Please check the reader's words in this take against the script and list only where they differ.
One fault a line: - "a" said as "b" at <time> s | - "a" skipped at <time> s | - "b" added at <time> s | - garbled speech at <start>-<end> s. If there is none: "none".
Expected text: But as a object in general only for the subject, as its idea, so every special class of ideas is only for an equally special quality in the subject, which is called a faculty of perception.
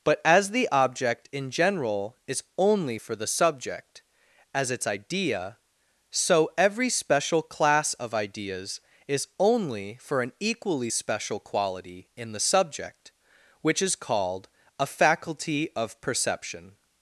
- "a" said as "the" at 0.5 s
- "is" added at 2.3 s